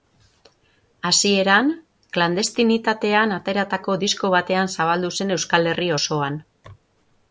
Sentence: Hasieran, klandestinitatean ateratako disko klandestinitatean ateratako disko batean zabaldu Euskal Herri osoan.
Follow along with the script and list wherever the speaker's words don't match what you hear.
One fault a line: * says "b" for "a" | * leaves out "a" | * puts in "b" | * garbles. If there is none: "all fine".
* leaves out "klandestinitatean ateratako disko"
* puts in "zen"